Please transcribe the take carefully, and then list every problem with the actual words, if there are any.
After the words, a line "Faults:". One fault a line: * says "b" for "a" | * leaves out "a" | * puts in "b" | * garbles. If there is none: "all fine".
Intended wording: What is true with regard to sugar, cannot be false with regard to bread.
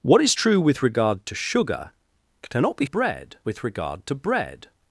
What is true with regard to sugar, cannot be bread with regard to bread.
Faults:
* says "bread" for "false"